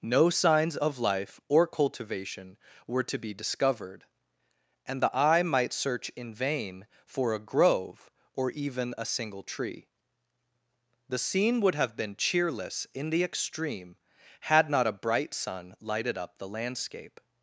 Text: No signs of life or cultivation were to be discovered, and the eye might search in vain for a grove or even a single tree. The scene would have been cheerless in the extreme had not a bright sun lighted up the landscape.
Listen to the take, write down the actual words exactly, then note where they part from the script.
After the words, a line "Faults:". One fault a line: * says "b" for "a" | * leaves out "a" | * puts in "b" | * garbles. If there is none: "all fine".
No signs of life or cultivation were to be discovered, and the eye might search in vain for a grove or even a single tree. The scene would have been cheerless in the extreme had not a bright sun lighted up the landscape.
Faults:
all fine